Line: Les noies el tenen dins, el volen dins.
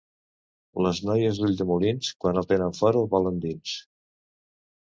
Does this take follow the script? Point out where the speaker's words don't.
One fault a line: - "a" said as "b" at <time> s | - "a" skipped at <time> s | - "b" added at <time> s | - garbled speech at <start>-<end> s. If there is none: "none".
- "d'Ulldemolins quan" added at 1.4 s
- "dins" said as "fora" at 2.8 s